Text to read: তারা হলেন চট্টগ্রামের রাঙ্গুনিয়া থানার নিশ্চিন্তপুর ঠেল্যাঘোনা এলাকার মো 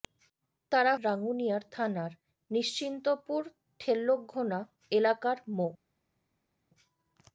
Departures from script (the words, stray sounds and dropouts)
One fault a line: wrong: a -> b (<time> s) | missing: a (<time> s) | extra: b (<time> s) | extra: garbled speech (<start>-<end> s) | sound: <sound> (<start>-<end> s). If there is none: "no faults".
missing: হলেন চট্টগ্রামের (0.9 s)